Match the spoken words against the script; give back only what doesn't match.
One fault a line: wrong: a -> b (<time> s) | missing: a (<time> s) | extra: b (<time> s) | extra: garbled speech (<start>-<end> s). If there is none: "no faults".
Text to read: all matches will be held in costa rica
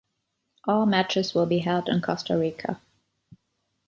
no faults